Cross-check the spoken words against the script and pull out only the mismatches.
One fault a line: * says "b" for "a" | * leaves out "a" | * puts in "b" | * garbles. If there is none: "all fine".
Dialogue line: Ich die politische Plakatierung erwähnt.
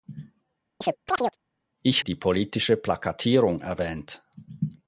all fine